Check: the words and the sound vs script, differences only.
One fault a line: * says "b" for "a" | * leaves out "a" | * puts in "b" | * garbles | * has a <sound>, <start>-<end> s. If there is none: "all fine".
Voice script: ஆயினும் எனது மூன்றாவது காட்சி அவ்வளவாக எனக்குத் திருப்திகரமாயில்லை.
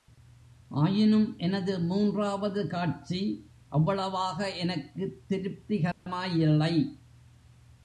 * has a dropout, 5.9-6.1 s